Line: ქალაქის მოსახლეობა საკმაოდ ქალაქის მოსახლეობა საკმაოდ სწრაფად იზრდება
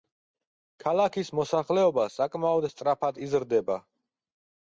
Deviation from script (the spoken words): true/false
true